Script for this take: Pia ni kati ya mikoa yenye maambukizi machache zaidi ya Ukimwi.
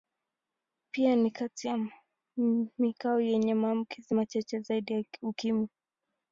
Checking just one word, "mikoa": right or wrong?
right